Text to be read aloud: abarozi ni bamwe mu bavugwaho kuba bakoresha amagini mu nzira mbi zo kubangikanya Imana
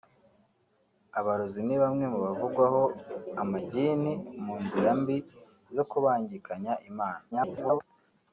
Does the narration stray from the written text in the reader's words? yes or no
yes